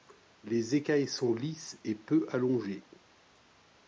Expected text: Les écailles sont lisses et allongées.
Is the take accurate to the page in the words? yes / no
no